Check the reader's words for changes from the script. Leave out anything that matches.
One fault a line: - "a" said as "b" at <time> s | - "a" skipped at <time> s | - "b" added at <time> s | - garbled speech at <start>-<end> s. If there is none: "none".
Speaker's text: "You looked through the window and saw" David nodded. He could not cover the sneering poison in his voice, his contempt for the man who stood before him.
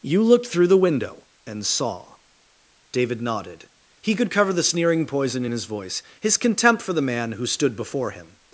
- "not" skipped at 4.3 s